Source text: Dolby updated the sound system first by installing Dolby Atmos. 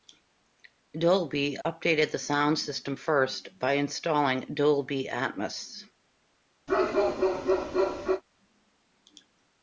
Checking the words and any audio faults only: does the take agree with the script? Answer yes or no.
no